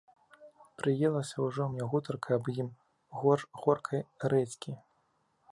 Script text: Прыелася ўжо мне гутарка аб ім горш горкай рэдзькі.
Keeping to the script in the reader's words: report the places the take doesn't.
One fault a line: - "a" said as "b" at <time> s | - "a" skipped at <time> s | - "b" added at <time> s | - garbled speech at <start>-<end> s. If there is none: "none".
none